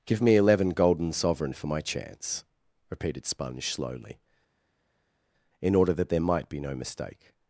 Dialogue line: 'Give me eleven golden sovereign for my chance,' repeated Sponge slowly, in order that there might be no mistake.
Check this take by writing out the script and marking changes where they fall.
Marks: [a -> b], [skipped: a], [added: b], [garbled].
'Give me eleven golden sovereign for my chance,' repeated Sponge slowly, in order that there might be no mistake.